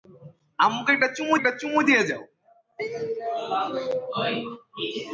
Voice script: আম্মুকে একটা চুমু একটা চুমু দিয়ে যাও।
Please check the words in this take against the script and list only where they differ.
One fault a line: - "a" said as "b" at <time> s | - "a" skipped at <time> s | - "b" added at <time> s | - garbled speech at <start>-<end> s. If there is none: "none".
none